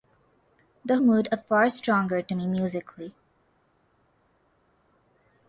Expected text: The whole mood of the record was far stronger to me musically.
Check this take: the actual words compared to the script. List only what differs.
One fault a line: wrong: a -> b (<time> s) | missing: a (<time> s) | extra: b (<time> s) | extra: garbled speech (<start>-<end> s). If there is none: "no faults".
missing: whole (1.0 s)
missing: the record was (1.4 s)